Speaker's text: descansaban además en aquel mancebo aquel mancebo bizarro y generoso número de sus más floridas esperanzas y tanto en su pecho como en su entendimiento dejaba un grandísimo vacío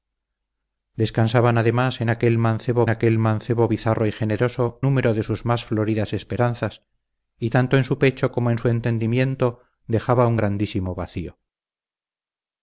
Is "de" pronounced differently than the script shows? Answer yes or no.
no